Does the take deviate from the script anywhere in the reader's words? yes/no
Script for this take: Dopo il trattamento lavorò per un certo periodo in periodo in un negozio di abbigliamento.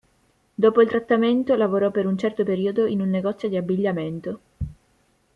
yes